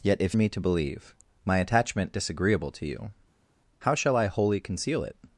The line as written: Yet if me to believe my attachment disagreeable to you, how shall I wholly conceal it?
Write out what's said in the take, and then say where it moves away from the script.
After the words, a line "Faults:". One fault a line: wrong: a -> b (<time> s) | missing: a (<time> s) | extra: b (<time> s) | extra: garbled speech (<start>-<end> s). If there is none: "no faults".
Yet if me to believe my attachment disagreeable to you, how shall I wholly conceal it?
Faults:
no faults